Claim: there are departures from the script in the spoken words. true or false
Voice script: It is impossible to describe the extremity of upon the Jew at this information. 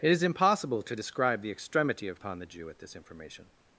false